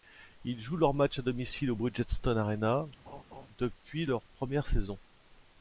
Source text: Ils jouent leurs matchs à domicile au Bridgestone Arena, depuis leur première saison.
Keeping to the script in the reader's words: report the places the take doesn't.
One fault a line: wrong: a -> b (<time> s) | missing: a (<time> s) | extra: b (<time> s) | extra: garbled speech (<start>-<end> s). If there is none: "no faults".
no faults